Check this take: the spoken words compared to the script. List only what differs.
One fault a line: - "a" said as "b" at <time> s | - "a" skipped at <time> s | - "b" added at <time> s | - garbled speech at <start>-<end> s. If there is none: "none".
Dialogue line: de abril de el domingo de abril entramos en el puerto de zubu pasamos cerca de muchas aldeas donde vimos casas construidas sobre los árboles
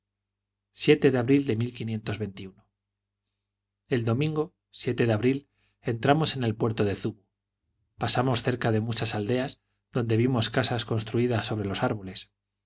none